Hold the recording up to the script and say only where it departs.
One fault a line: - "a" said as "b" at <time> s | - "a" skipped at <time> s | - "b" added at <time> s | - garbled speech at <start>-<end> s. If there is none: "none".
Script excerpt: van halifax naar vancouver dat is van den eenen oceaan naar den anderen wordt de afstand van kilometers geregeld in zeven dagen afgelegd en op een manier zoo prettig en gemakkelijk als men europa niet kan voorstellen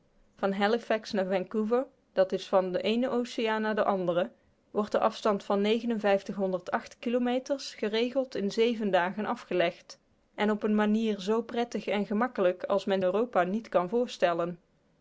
none